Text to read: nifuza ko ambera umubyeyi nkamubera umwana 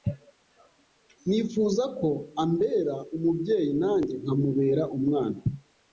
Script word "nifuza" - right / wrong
right